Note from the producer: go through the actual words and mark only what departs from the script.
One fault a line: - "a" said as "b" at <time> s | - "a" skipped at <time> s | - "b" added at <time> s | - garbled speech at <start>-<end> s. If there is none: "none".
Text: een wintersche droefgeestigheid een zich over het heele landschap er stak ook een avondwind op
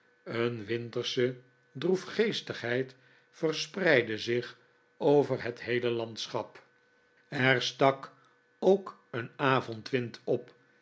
- "een" said as "verspreidde" at 3.3 s